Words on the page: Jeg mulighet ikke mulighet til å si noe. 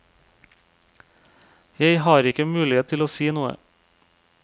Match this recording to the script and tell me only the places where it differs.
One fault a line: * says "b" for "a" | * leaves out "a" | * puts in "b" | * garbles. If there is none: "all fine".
* says "har" for "mulighet"